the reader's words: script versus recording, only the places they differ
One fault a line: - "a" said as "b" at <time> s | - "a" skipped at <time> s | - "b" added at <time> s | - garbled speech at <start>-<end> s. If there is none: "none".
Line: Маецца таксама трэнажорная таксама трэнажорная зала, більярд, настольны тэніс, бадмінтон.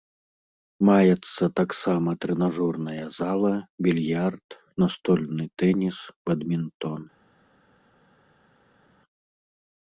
- "таксама трэнажорная" skipped at 3.0 s